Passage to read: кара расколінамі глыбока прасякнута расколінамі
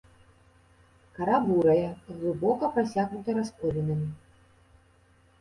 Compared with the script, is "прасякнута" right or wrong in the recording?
right